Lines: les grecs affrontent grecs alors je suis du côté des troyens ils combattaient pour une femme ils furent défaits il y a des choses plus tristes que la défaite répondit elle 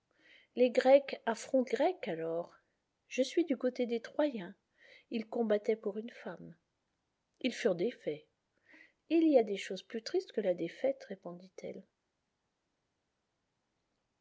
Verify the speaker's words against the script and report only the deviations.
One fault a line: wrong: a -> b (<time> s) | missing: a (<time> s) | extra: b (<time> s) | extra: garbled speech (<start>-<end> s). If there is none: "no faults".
no faults